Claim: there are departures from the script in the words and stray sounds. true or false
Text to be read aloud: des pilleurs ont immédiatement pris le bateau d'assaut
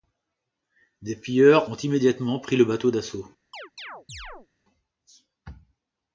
true